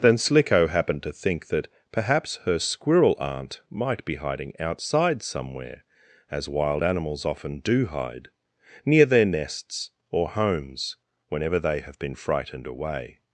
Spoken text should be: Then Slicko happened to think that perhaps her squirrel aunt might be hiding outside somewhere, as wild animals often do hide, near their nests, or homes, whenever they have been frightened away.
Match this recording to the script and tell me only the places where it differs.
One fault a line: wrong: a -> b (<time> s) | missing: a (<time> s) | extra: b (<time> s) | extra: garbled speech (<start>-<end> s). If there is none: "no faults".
no faults